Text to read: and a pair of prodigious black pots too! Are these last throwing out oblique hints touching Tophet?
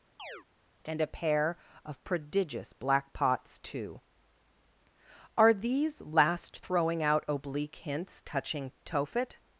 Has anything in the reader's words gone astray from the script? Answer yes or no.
no